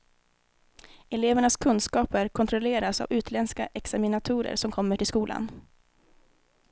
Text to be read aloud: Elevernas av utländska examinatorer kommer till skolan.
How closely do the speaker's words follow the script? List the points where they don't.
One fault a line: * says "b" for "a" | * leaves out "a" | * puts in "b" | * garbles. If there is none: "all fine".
* puts in "kunskaper kontrolleras"
* puts in "som"